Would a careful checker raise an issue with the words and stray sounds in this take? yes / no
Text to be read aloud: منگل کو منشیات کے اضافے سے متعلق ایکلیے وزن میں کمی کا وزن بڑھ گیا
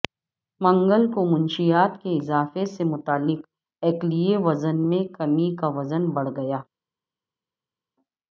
no